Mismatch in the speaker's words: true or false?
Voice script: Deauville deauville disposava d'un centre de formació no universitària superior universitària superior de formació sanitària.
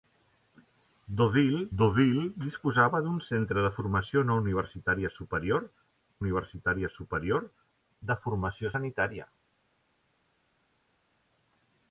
false